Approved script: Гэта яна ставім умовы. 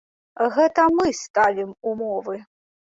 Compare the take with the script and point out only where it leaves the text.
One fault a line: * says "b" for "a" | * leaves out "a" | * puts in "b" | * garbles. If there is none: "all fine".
* says "мы" for "яна"